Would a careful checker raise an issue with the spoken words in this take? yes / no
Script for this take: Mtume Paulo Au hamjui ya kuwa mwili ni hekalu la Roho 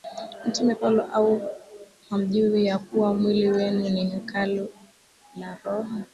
yes